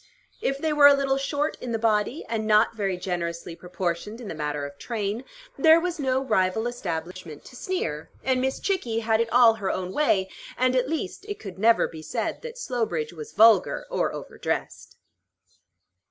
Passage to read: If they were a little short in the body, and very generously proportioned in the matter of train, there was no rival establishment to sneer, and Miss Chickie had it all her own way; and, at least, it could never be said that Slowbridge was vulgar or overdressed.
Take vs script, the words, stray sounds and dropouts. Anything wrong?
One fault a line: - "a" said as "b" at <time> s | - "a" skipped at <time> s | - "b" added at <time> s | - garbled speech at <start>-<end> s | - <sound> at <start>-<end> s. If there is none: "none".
- "not" added at 2.5 s
- dropout at 7.1-7.2 s